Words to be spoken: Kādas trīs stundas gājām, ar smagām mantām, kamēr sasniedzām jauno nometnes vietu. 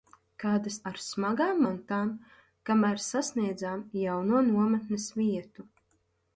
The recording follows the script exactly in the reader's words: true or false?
false